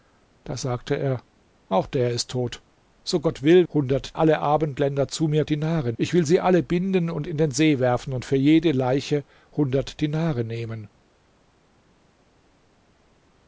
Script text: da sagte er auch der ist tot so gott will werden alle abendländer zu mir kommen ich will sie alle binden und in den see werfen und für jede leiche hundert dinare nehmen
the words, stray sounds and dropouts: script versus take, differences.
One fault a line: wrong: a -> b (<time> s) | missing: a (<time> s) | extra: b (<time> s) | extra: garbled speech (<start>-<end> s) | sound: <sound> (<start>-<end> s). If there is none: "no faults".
wrong: werden -> hundert (3.7 s)
wrong: kommen -> dinare (5.5 s)